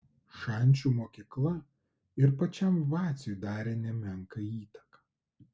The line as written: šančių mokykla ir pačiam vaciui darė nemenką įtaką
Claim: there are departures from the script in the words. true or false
false